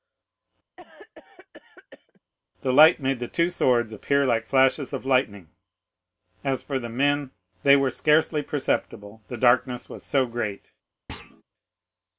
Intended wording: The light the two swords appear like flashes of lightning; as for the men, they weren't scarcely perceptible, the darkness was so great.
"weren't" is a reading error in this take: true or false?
true